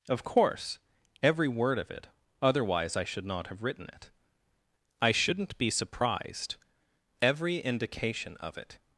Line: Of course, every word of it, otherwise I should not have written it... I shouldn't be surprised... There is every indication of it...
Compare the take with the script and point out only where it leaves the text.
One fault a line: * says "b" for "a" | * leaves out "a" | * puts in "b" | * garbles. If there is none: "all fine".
* leaves out "There is"